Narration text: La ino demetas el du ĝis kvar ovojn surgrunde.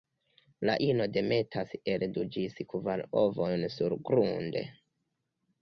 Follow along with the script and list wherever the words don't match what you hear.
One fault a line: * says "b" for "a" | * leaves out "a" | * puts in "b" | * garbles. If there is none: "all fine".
all fine